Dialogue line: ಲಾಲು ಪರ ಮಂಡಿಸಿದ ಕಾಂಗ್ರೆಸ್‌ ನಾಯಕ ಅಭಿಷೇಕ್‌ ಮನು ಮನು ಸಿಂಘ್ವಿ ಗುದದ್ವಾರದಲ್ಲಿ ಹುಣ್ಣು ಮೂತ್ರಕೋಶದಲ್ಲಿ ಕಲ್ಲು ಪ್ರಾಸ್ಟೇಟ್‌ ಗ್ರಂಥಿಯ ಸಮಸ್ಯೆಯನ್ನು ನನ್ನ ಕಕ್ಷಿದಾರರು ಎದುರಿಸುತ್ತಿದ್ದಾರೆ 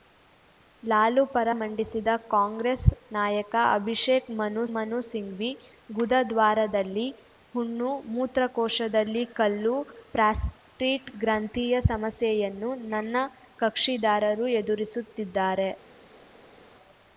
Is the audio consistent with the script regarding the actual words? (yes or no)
yes